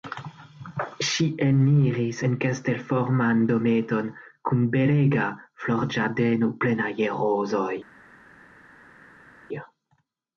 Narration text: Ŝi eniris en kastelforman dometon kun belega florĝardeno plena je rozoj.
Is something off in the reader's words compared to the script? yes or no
no